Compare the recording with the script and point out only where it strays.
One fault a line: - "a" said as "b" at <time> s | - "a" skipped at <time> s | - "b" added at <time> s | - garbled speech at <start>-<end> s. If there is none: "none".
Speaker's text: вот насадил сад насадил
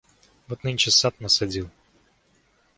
- "насадил" said as "нынче" at 0.6 s